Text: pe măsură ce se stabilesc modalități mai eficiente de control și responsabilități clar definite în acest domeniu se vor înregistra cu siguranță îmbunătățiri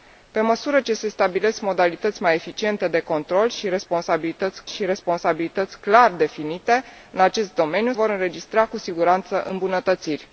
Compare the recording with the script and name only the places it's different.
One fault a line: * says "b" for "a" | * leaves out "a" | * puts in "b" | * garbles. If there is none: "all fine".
* puts in "și responsabilități"
* leaves out "se"